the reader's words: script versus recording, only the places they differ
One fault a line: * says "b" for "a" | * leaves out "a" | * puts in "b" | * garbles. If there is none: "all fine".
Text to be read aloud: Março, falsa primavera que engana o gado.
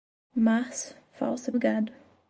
* leaves out "primavera que engana"